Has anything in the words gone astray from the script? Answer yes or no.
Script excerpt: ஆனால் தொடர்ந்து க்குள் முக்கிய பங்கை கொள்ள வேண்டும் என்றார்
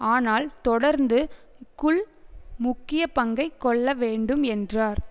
no